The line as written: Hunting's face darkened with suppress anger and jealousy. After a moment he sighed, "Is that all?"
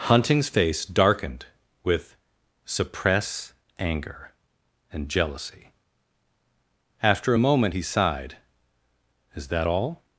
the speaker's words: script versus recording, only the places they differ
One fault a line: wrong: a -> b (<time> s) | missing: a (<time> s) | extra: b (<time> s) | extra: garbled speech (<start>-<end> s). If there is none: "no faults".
no faults